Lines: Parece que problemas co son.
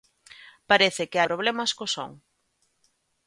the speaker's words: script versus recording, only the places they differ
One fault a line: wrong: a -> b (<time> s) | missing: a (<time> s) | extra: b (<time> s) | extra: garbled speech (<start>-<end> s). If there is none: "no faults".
no faults